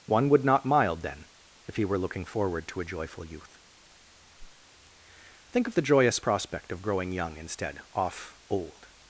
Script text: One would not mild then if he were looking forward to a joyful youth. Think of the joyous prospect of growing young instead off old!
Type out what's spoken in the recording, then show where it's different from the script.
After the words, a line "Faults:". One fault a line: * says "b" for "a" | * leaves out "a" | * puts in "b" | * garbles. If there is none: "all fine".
One would not mild then if he were looking forward to a joyful youth. Think of the joyous prospect of growing young instead off old!
Faults:
all fine